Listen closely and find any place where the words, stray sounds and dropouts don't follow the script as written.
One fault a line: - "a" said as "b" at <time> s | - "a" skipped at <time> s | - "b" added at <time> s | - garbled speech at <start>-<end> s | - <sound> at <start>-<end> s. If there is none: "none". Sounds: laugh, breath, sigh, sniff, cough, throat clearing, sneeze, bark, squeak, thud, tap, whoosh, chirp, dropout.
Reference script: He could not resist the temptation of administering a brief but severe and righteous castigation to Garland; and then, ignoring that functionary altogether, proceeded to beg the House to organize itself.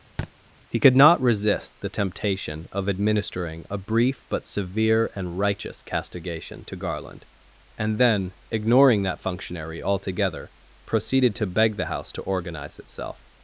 - thud at 0.2-0.3 s